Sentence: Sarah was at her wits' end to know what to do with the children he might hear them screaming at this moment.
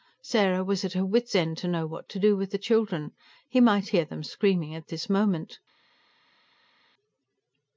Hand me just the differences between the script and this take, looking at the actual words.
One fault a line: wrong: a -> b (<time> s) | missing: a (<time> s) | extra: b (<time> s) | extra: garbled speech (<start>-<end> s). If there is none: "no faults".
no faults